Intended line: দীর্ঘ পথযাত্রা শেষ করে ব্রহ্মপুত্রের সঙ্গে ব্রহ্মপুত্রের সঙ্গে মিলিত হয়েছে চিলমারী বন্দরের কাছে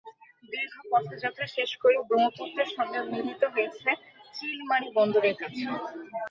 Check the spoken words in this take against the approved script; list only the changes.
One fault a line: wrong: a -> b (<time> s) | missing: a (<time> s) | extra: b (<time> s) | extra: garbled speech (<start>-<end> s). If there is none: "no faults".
missing: ব্রহ্মপুত্রের সঙ্গে (3.0 s)